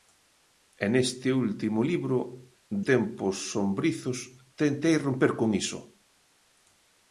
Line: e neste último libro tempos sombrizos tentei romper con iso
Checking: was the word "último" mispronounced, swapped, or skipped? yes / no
no